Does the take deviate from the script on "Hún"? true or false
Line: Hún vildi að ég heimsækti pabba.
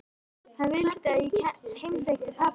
true